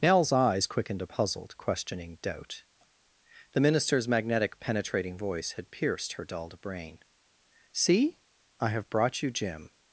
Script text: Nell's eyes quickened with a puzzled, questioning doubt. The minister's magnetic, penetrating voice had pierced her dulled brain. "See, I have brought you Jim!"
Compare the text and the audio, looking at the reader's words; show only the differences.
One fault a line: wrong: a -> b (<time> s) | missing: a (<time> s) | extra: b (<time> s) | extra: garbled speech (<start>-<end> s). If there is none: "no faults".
missing: with (1.0 s)